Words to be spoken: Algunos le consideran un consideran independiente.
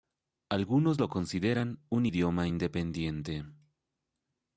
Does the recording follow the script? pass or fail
fail